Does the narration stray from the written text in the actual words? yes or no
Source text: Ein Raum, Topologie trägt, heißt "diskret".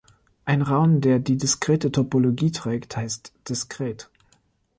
yes